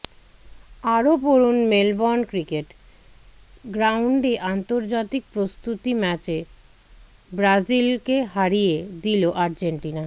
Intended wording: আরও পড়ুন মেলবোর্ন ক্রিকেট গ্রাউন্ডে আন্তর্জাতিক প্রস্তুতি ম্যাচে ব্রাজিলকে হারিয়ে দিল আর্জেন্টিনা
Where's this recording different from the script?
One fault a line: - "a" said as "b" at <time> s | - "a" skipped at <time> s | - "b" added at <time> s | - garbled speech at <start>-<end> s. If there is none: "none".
none